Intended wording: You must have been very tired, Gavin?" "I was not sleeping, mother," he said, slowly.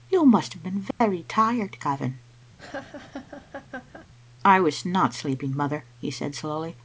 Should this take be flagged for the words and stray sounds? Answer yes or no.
yes